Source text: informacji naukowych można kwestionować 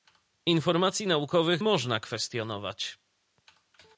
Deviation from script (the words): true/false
false